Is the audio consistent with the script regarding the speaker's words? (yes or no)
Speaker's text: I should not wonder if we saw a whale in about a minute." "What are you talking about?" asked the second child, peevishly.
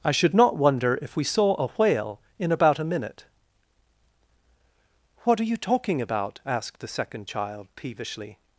yes